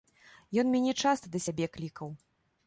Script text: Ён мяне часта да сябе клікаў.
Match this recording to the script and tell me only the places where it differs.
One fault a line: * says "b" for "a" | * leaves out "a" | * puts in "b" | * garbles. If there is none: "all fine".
all fine